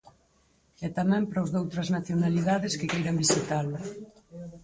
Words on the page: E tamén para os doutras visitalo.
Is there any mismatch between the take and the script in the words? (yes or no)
yes